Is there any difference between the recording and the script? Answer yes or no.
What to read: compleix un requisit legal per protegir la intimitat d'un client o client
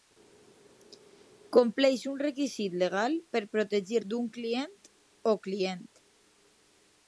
yes